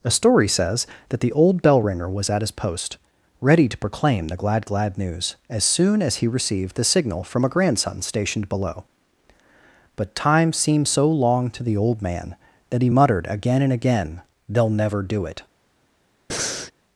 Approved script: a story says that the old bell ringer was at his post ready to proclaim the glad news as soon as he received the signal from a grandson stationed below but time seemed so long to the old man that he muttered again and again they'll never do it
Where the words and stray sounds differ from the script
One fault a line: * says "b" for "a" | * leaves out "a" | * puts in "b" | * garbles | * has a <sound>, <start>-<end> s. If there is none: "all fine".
* puts in "glad"
* has a breath, 16.3-16.7 s